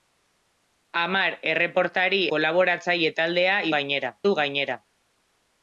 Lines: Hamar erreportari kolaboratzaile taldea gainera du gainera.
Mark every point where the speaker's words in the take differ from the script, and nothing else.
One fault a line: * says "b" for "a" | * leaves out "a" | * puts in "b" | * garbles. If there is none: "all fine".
all fine